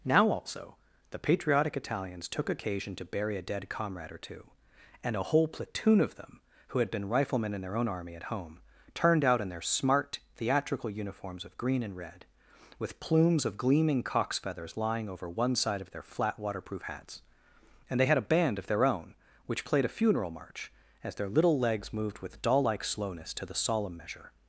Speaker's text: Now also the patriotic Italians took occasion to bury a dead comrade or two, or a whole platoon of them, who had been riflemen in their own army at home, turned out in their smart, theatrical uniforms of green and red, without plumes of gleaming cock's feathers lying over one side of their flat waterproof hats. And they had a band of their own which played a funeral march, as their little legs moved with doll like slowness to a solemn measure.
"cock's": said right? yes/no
yes